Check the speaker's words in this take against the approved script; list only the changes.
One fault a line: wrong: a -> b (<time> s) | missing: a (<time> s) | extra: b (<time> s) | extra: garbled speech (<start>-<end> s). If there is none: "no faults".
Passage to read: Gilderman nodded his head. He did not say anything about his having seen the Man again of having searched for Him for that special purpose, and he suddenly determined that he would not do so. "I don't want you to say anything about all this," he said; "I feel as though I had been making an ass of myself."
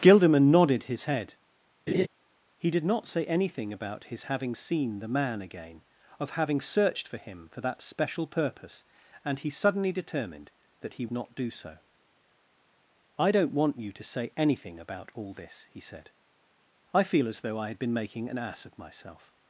missing: would (11.1 s)